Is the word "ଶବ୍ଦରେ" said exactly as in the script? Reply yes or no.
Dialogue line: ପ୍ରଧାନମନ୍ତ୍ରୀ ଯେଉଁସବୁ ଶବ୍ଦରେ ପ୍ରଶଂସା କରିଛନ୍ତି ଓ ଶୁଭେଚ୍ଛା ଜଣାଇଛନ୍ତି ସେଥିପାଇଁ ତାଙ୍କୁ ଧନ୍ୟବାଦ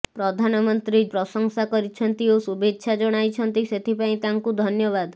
no